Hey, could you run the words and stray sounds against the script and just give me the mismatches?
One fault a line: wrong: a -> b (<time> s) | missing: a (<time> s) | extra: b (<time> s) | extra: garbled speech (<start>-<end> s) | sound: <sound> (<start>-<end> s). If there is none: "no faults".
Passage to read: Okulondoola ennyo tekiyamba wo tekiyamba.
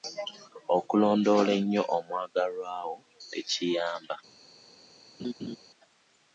wrong: tekiyamba -> omwagalwa (2.0 s)
sound: laugh (5.2-5.6 s)